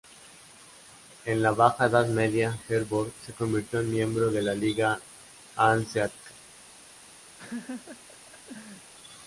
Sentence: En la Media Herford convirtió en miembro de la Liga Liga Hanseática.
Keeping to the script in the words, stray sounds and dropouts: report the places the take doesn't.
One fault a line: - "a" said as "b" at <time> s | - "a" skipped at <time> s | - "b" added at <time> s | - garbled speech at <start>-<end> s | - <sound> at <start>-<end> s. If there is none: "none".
- "Baja Edad" added at 1.5 s
- "se" added at 3.2 s
- "Liga" skipped at 5.0 s
- laugh at 7.4-8.9 s